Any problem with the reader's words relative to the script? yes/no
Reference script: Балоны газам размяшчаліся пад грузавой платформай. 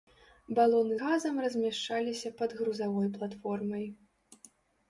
no